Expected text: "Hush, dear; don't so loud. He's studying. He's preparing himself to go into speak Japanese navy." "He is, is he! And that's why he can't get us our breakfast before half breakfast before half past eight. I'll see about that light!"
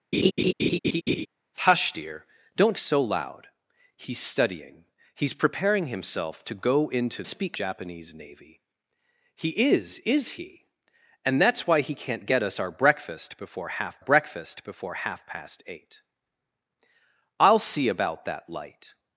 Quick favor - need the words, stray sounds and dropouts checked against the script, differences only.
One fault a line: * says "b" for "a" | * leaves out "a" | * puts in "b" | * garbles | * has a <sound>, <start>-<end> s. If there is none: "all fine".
* has a laugh, 0.1-1.3 s